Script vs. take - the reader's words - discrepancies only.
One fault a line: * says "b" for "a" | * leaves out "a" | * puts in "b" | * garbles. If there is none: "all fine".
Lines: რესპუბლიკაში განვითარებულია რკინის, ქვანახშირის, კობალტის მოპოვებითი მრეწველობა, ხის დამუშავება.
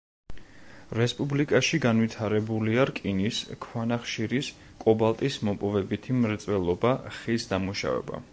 all fine